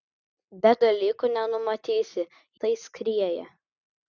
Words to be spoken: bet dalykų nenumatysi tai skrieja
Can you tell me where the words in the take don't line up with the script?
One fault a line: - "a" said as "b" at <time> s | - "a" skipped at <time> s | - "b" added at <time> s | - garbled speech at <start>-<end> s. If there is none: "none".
none